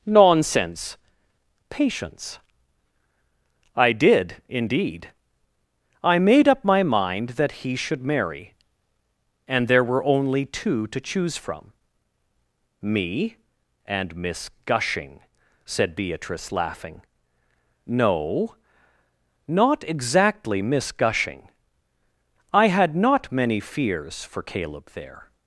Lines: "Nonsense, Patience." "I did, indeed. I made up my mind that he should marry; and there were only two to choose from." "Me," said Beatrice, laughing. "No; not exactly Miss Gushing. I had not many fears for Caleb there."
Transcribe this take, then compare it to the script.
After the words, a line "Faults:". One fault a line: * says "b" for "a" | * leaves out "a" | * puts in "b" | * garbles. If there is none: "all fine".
"Nonsense, Patience." "I did, indeed. I made up my mind that he should marry; and there were only two to choose from." "Me and Miss Gushing," said Beatrice, laughing. "No; not exactly Miss Gushing. I had not many fears for Caleb there."
Faults:
* puts in "and Miss Gushing"